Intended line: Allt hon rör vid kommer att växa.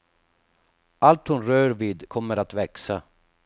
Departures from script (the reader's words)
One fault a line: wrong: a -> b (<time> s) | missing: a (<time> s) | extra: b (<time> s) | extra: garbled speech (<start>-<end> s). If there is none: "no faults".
no faults